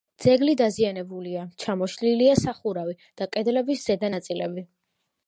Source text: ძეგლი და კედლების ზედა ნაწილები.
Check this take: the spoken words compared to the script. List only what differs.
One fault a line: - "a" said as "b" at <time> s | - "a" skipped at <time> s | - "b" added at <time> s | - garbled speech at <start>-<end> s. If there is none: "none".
- "დაზიანებულია ჩამოშლილია სახურავი" added at 0.6 s